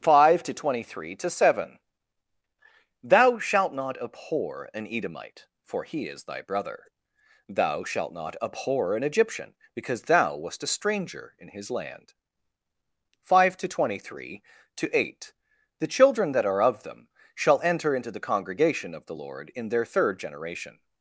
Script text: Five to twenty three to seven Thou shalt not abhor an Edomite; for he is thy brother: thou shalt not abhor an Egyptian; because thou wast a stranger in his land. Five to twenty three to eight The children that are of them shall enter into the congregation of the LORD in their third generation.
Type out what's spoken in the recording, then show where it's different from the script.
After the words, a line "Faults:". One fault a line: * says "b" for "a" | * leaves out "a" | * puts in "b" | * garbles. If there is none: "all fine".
Five to twenty three to seven Thou shalt not abhor an Edomite; for he is thy brother: thou shalt not abhor an Egyptian; because thou wast a stranger in his land. Five to twenty three to eight The children that are of them shall enter into the congregation of the LORD in their third generation.
Faults:
all fine